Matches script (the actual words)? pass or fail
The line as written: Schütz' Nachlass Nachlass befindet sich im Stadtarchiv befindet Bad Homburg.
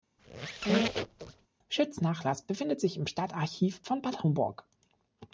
fail